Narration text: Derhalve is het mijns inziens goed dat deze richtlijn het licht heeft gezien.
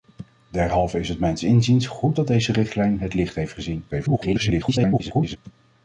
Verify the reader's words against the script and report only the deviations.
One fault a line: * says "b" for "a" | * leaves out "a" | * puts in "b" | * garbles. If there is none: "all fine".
* garbles